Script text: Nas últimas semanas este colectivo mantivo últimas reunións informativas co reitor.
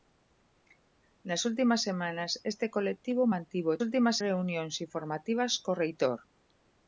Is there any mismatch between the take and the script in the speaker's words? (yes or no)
no